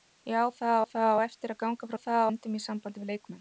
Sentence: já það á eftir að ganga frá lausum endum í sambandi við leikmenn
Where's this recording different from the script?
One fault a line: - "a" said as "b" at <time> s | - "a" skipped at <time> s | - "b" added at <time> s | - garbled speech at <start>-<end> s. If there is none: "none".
- "það" added at 0.9 s
- "lausum" said as "það" at 2.0 s